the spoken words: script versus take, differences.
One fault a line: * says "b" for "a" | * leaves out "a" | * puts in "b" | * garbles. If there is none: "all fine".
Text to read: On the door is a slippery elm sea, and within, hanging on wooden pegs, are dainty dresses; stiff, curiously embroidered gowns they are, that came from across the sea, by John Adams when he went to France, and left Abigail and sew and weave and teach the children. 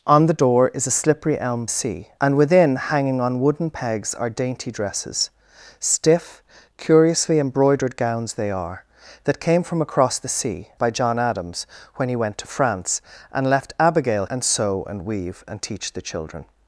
all fine